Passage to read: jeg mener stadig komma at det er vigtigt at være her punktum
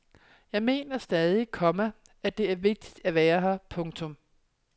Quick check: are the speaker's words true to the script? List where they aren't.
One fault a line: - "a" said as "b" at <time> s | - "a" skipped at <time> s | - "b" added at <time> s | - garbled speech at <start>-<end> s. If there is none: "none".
none